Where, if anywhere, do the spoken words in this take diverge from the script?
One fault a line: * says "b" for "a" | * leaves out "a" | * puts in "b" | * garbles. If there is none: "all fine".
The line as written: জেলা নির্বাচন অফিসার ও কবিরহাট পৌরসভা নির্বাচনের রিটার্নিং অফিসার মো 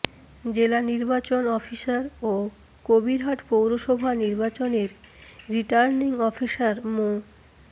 all fine